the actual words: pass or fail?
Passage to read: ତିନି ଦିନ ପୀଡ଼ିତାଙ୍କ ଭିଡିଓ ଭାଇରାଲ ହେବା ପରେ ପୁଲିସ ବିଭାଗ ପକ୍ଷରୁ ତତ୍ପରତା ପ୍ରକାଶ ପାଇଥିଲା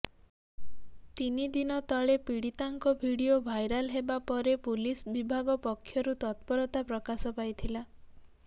fail